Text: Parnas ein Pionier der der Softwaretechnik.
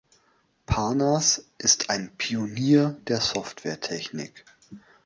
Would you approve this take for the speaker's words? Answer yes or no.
no